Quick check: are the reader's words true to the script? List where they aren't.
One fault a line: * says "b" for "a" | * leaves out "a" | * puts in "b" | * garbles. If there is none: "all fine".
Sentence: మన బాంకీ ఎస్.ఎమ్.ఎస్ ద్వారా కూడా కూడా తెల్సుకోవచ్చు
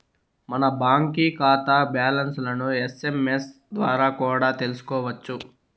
* puts in "కాతా బ్యాలన్స్లను"
* leaves out "కూడా"